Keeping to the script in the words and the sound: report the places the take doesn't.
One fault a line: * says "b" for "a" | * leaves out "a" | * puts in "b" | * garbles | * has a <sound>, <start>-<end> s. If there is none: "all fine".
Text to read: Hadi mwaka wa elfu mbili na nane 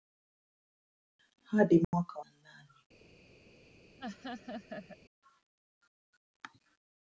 * has a dropout, 1.8-1.9 s
* leaves out "elfu mbili"
* has a laugh, 4.0-5.0 s